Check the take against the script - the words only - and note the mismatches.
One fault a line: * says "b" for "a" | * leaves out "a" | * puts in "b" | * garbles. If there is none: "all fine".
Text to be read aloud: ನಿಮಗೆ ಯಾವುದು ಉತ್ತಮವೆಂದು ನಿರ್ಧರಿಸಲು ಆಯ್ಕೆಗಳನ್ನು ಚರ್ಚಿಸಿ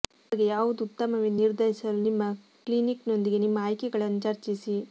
* puts in "ನಿಮ್ಮ ಕ್ಲಿನಿಕ್ನೊಂದಿಗೆ ನಿಮ್ಮ"